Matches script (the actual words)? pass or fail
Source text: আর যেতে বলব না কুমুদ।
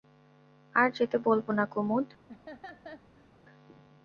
pass